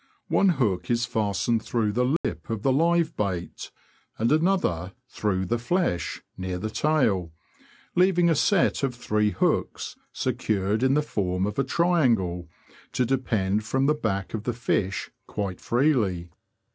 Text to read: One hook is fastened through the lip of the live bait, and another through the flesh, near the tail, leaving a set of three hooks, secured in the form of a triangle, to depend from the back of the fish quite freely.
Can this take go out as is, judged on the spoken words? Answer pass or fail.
pass